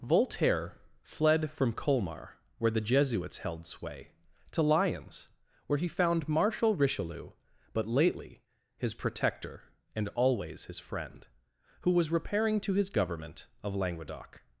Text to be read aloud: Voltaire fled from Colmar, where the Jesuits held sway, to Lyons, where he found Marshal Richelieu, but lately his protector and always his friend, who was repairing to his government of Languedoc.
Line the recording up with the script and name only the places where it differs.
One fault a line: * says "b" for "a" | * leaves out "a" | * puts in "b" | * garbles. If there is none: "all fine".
all fine